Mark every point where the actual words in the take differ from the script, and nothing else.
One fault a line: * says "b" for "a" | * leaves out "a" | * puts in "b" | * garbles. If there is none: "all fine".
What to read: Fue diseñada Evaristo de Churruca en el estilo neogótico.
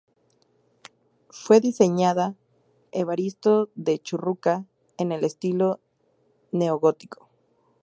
all fine